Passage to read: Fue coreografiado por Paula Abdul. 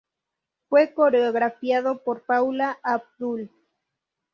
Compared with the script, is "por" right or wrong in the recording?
right